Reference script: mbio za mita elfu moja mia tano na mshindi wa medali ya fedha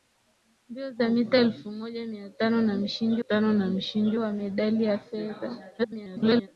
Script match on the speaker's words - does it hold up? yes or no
no